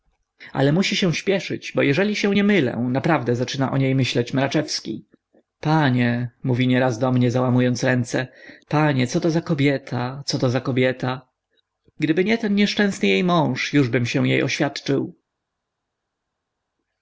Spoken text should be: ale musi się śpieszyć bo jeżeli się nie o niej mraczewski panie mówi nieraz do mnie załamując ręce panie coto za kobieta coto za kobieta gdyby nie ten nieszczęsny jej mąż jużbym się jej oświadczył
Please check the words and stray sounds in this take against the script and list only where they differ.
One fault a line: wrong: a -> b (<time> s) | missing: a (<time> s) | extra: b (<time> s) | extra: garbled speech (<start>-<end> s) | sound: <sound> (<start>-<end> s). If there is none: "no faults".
extra: mylę naprawdę zaczyna (2.4 s)
extra: myśleć (4.0 s)